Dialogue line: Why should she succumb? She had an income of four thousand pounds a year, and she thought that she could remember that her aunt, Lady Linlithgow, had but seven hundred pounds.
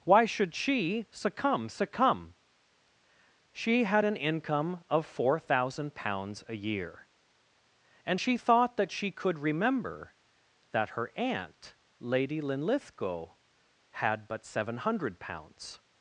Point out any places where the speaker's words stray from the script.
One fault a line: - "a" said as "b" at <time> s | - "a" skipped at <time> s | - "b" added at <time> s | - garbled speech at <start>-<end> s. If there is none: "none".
- "succumb" added at 1.7 s